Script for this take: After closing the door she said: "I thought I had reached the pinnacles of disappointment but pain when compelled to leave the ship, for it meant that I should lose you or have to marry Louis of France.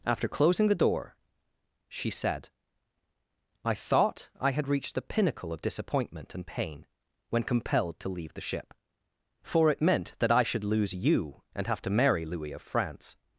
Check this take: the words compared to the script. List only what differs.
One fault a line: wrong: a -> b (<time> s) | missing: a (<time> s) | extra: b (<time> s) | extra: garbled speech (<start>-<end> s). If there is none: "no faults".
wrong: pinnacles -> pinnacle (5.0 s)
wrong: but -> and (6.4 s)
wrong: or -> and (11.5 s)